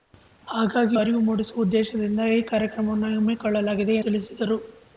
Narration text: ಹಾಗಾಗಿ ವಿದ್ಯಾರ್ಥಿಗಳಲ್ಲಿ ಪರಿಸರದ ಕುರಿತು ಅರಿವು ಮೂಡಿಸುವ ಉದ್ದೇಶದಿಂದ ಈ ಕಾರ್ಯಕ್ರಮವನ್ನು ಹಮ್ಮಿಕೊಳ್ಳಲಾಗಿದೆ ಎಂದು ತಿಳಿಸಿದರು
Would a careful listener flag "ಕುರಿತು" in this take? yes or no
yes